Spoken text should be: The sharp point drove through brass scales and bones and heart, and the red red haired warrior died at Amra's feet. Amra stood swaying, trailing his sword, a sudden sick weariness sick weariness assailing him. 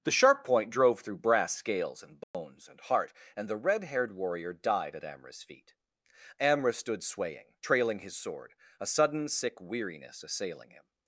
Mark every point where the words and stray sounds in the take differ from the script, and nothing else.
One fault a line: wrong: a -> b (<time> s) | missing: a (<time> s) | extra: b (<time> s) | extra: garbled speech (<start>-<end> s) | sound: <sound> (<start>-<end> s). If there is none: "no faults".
sound: dropout (2.2-2.3 s)
missing: red (3.8 s)
missing: sick weariness (10.2 s)